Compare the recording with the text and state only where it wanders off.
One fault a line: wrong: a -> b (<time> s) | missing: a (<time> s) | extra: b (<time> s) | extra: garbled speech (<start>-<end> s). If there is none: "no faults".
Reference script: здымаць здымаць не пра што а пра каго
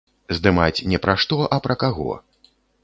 missing: здымаць (0.8 s)